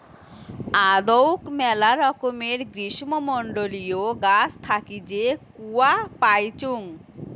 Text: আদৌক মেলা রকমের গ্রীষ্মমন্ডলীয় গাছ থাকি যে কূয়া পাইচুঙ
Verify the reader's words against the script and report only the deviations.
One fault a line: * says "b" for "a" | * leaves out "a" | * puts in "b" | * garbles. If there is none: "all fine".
all fine